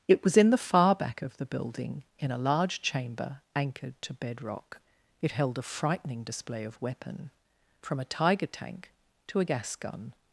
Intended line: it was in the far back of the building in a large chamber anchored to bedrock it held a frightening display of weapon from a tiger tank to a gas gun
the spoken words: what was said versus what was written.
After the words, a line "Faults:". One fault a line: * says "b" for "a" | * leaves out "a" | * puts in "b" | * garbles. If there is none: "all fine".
it was in the far back of the building in a large chamber anchored to bedrock it held a frightening display of weapon from a tiger tank to a gas gun
Faults:
all fine